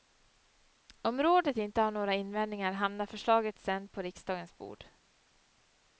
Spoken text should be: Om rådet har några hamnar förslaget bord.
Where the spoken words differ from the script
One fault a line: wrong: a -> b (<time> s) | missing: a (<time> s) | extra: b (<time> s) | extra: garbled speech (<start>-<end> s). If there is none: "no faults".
extra: inte (1.6 s)
extra: invändningar (2.1 s)
extra: sedan på riksdagens (3.6 s)